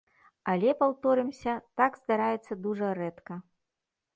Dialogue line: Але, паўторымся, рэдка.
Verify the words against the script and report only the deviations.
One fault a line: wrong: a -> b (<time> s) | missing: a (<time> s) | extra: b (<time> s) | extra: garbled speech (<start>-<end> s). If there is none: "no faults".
extra: так здараецца дужа (1.8 s)